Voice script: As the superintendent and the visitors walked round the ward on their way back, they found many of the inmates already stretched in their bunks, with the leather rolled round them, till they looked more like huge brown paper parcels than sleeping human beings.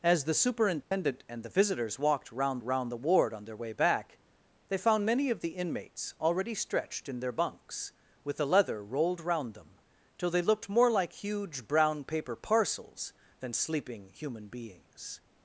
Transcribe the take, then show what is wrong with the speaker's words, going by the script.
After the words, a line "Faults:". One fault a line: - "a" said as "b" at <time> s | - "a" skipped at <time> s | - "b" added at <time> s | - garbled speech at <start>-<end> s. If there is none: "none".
As the superintendent and the visitors walked round round the ward on their way back, they found many of the inmates already stretched in their bunks, with the leather rolled round them, till they looked more like huge brown paper parcels than sleeping human beings.
Faults:
- "round" added at 2.6 s